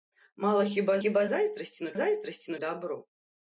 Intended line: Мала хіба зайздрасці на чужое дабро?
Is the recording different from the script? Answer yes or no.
yes